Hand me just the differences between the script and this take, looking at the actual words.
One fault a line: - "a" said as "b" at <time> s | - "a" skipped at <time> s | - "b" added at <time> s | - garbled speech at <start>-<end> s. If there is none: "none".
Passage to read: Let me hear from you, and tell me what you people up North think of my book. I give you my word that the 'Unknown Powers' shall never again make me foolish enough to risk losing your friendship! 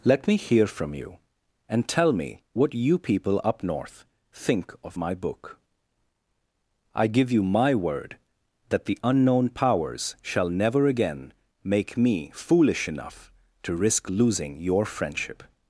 none